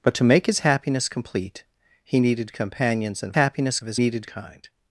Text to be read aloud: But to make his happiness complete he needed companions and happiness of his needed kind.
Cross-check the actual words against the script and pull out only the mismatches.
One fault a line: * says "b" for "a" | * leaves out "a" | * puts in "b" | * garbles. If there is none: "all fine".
all fine